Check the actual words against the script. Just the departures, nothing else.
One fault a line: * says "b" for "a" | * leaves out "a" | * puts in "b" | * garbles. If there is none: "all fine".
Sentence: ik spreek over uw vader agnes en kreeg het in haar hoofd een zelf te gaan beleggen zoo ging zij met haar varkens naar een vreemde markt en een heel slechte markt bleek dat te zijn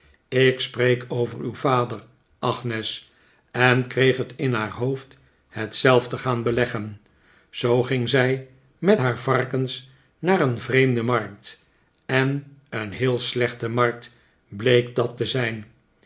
* says "het" for "een"